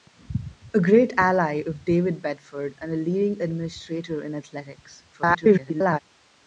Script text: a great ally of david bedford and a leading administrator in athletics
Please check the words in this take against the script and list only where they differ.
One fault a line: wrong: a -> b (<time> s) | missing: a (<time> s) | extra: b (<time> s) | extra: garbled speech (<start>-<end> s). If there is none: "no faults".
extra: garbled speech (5.1-6.0 s)